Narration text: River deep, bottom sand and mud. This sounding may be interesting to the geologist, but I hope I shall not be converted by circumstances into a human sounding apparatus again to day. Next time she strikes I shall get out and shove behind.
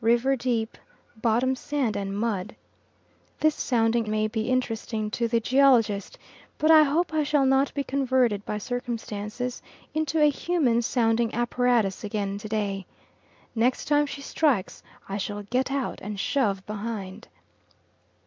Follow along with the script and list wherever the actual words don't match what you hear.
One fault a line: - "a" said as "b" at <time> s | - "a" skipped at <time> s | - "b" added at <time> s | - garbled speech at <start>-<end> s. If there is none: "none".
none